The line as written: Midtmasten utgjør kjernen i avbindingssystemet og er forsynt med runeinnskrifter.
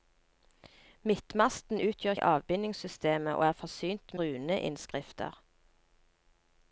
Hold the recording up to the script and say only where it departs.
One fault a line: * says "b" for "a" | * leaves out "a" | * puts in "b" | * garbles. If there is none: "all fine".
* leaves out "kjernen"
* leaves out "med"